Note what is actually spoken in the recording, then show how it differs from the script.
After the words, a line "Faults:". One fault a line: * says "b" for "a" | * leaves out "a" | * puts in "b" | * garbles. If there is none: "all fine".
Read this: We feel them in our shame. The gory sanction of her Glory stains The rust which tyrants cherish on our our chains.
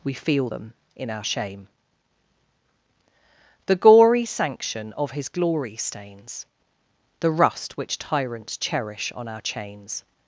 We feel them in our shame. The gory sanction of his Glory stains The rust which tyrants cherish on our chains.
Faults:
* says "his" for "her"
* leaves out "our"